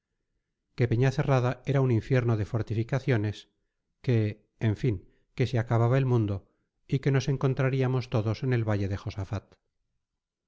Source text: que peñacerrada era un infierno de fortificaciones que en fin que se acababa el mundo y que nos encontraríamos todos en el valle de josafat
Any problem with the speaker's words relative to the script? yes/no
no